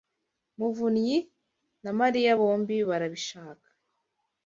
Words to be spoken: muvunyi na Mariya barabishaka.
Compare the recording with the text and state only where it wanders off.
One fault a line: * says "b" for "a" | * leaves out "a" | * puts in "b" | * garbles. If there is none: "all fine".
* puts in "bombi"